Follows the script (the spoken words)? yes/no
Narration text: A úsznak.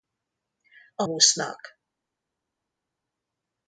yes